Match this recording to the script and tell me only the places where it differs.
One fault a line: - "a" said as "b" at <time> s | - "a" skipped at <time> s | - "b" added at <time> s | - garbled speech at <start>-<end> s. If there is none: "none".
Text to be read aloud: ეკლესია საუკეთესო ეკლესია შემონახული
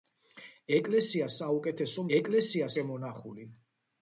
none